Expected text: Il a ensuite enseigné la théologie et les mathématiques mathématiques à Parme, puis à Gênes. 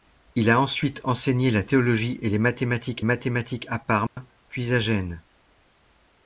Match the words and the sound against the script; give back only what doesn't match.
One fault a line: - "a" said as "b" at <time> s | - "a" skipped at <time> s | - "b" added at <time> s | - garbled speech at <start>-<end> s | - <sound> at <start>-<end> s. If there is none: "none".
- dropout at 4.1-4.2 s